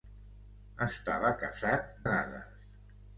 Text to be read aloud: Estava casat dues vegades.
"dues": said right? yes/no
no